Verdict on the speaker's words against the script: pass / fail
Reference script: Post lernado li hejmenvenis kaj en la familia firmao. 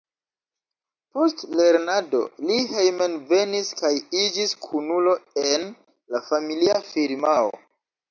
fail